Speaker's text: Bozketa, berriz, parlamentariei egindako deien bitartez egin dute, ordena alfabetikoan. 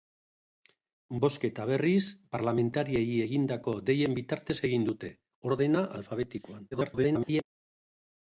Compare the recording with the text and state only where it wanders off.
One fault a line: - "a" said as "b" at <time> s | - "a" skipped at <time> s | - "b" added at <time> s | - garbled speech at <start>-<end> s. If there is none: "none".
- garbled speech at 6.7-7.4 s